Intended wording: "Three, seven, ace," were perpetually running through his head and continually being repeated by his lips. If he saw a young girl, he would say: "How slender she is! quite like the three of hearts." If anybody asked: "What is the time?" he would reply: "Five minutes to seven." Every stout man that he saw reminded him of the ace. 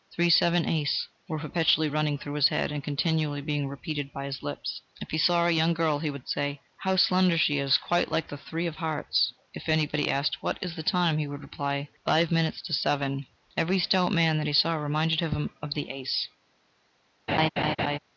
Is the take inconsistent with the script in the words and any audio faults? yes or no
yes